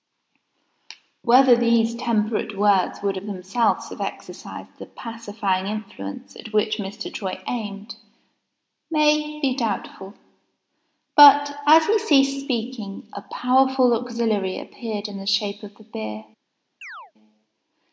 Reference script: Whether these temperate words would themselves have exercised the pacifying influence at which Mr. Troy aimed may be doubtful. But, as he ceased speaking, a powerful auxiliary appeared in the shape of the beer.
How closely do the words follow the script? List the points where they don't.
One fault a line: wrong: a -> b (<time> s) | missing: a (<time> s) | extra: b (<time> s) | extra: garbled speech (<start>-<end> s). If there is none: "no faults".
extra: of (3.1 s)